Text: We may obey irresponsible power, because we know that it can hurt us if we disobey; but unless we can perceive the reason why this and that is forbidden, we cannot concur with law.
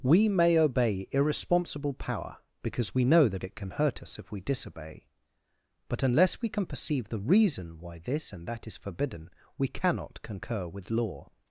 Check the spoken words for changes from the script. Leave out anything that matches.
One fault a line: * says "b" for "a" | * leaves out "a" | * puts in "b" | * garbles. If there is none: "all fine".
all fine